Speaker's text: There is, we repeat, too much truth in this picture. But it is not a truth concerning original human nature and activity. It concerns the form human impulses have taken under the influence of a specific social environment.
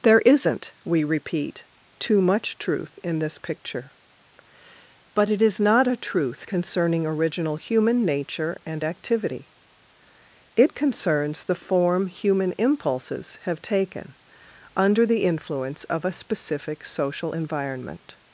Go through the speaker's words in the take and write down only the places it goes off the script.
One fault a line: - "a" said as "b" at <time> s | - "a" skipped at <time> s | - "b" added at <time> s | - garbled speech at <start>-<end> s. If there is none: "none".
- "is" said as "isn't" at 0.2 s